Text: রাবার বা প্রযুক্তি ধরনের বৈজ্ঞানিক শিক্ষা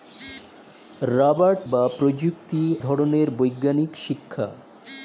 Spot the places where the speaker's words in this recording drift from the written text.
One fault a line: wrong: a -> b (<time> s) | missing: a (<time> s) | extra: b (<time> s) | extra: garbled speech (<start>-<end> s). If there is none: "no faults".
no faults